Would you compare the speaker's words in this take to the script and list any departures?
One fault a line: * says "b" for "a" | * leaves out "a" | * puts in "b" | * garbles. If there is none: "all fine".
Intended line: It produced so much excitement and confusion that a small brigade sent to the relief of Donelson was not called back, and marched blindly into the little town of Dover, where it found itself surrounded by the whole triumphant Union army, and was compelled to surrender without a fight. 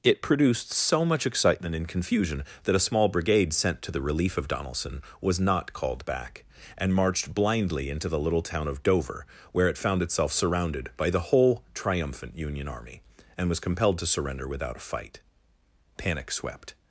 * puts in "Panic swept"